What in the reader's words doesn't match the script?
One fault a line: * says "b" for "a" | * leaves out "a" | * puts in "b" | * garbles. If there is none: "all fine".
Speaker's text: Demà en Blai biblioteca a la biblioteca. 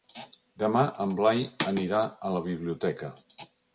* says "anirà" for "biblioteca"